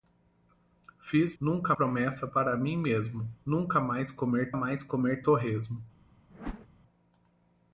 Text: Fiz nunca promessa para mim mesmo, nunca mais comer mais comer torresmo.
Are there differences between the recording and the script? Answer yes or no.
no